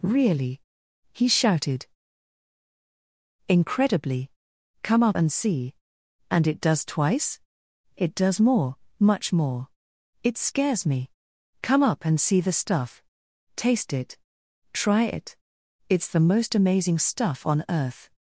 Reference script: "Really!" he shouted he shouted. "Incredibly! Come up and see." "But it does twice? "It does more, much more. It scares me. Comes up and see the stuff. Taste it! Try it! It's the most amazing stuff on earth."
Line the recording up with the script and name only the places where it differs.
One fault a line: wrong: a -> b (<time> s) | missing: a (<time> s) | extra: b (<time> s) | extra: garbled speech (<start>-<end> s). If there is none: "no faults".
missing: he shouted (1.9 s)
wrong: But -> And (6.3 s)
wrong: Comes -> Come (11.6 s)